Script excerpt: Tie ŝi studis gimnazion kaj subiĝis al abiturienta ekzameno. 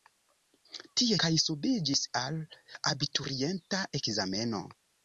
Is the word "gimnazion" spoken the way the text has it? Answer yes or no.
no